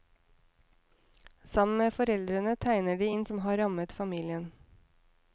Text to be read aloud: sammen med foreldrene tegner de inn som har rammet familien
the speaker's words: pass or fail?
pass